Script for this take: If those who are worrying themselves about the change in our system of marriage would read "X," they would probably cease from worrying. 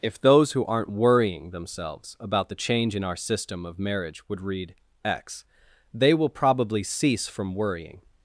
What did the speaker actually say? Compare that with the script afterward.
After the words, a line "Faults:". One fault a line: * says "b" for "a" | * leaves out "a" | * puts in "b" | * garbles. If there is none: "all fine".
If those who aren't worrying themselves about the change in our system of marriage would read "X," they will probably cease from worrying.
Faults:
* says "aren't" for "are"
* says "will" for "would"